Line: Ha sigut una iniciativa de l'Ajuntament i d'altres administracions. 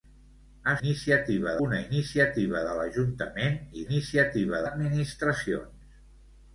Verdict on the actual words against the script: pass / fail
fail